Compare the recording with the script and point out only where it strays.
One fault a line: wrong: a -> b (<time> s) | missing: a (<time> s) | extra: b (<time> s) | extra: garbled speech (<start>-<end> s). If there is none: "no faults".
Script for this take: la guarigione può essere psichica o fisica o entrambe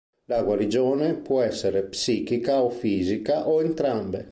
no faults